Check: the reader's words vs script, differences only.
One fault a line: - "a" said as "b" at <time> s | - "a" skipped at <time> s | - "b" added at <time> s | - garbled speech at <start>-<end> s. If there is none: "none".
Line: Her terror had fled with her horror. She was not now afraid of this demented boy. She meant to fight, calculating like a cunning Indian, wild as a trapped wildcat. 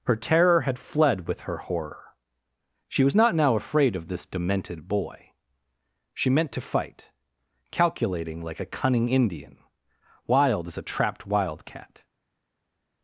none